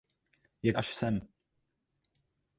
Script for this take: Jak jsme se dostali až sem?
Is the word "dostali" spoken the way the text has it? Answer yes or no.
no